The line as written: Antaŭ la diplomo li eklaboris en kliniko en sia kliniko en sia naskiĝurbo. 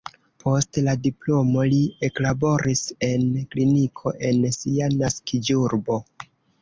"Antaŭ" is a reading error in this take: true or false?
true